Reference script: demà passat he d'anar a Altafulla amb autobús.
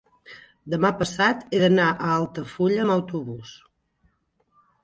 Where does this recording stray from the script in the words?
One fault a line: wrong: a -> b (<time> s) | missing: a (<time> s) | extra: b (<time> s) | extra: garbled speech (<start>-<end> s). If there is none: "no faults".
no faults